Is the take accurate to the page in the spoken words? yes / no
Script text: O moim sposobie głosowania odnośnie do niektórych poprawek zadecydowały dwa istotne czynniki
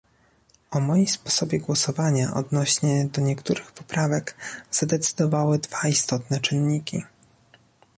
yes